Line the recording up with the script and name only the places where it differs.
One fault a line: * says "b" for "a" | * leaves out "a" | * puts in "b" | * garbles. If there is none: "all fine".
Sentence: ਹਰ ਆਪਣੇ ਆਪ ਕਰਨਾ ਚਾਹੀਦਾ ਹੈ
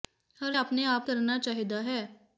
all fine